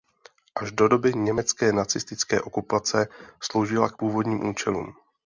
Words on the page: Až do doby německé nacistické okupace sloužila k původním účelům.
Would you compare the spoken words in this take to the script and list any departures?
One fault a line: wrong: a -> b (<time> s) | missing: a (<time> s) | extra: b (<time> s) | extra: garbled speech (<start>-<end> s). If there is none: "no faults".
no faults